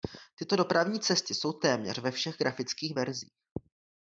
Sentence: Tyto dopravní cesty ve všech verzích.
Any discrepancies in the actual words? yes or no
yes